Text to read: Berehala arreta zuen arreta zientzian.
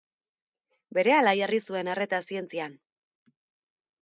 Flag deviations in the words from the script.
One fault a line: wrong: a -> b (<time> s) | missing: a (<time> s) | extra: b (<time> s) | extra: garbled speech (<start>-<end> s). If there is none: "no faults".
wrong: arreta -> jarri (1.4 s)